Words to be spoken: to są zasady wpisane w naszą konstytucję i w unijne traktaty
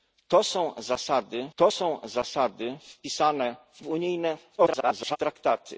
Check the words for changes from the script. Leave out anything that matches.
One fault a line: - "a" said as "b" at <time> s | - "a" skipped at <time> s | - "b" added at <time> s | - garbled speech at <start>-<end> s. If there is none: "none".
- "wpisane w naszą konstytucję i" said as "to są zasady wpisane w" at 1.5 s
- garbled speech at 4.6-5.2 s